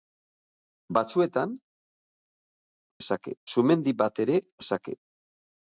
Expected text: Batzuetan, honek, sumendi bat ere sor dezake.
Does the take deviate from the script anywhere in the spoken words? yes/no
yes